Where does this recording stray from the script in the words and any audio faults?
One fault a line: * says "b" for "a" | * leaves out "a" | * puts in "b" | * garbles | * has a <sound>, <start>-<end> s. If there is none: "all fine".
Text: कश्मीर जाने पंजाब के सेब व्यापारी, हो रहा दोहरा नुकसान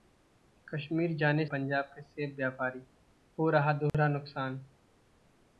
* has a dropout, 3.9-3.9 s